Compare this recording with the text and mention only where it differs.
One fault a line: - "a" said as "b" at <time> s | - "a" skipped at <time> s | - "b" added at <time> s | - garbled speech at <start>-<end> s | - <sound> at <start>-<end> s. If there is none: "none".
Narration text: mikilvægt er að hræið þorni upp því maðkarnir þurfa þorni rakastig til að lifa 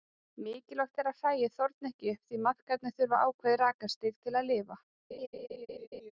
- "ekki" added at 1.9 s
- "þorni" said as "ákveðið" at 3.3 s
- laugh at 5.1-6.1 s